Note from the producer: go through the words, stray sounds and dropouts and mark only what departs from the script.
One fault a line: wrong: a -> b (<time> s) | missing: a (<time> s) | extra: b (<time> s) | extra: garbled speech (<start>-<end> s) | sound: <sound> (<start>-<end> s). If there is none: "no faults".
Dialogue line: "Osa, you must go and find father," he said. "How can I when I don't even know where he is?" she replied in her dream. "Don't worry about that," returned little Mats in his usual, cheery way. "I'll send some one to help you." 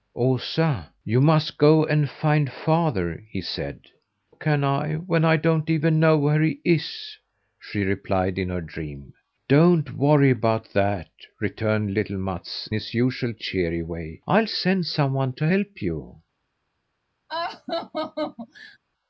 missing: How (3.8 s)
missing: in (12.7 s)
sound: laugh (17.3-18.8 s)